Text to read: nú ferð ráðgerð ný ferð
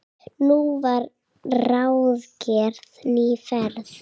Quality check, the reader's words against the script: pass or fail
fail